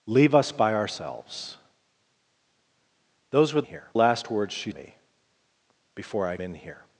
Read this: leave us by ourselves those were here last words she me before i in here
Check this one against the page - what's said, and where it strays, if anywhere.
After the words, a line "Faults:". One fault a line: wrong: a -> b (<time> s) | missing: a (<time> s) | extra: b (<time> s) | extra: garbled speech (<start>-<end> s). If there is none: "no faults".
leave us by ourselves those were here last words she me before i in here
Faults:
no faults